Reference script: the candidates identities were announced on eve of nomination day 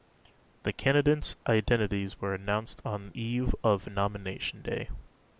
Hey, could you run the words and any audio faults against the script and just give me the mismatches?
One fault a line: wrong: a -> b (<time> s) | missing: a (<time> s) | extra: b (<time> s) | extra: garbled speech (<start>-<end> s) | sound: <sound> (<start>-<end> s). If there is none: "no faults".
no faults